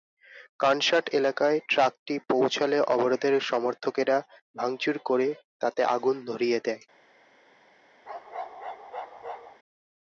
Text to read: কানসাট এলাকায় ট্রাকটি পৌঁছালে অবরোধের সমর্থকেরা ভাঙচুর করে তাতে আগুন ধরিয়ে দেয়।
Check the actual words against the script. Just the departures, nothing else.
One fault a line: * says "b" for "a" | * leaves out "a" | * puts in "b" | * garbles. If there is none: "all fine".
all fine